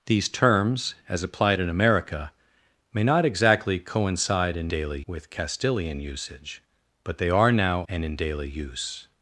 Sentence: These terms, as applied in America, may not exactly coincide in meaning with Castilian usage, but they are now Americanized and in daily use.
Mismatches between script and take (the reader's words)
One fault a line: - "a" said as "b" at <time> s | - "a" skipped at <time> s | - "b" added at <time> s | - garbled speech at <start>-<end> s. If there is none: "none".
- "meaning" said as "daily" at 4.7 s
- "Americanized" skipped at 7.8 s